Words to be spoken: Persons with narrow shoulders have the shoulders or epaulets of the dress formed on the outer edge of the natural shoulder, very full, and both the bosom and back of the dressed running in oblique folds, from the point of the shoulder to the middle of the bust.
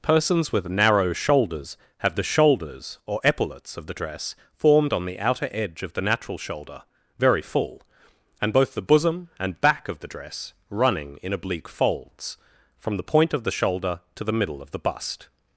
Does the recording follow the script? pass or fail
fail